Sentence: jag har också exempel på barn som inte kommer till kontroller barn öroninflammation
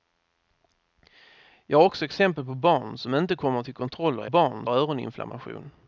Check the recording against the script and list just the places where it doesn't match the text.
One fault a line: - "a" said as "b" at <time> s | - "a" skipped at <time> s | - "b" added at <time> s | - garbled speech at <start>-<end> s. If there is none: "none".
none